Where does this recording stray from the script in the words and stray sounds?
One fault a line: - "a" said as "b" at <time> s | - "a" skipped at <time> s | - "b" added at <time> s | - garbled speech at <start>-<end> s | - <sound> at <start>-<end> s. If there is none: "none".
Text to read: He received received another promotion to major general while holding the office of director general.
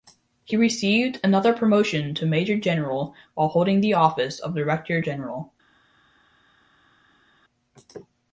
- "received" skipped at 1.2 s